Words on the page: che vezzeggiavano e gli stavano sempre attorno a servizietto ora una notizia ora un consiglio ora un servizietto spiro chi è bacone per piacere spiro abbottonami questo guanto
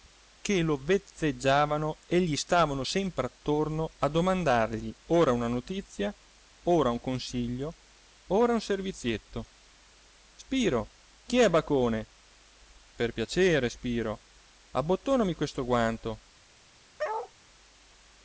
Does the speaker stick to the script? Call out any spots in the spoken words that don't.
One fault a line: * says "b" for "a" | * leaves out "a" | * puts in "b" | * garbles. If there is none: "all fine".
* puts in "lo"
* says "domandargli" for "servizietto"